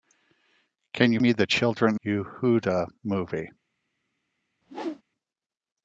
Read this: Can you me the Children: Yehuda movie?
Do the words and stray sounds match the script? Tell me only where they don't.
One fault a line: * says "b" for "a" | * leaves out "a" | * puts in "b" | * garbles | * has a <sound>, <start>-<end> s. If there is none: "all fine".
* has a whoosh, 4.6-5.0 s